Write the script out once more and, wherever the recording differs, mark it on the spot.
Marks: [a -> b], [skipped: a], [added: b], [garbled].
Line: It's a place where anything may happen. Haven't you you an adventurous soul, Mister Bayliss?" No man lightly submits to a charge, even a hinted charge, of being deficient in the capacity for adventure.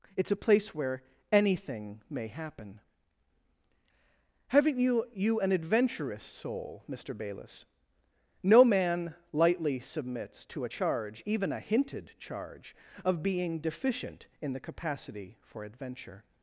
It's a place where anything may happen. Haven't you you an adventurous soul, Mister Bayliss?" No man lightly submits to a charge, even a hinted charge, of being deficient in the capacity for adventure.